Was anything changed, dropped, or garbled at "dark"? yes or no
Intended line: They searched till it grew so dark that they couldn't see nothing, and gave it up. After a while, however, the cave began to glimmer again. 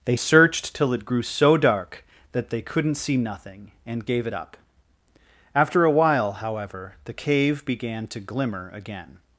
no